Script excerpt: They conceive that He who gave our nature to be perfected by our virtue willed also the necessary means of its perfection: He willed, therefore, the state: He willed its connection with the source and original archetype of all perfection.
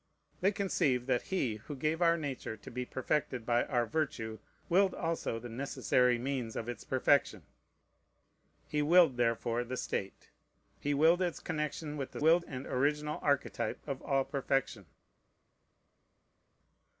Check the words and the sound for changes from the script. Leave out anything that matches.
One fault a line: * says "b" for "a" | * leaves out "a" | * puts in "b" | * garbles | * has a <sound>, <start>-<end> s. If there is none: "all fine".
* says "willed" for "source"